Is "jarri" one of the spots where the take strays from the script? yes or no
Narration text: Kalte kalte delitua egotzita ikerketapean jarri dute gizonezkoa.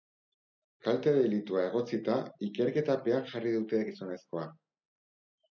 no